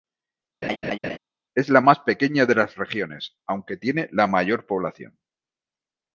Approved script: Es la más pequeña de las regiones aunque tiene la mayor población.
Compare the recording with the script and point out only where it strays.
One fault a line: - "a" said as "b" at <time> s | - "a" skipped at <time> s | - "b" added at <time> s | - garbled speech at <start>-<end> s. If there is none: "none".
none